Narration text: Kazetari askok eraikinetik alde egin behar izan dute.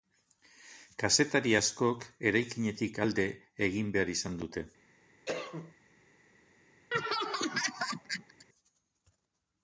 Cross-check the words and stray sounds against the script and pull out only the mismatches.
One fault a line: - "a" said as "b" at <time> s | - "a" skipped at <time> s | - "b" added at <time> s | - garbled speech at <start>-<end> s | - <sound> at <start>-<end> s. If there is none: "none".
- cough at 5.3-5.7 s
- laugh at 6.9-8.5 s